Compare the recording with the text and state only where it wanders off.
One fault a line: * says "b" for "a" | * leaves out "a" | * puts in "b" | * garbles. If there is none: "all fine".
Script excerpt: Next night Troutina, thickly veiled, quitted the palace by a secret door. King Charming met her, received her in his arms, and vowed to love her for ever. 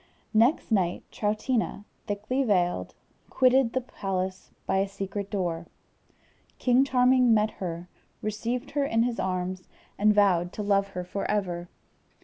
all fine